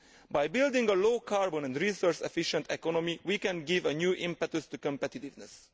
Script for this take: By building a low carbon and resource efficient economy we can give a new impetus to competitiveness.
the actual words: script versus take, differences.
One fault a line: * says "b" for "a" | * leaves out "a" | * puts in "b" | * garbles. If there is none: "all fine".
all fine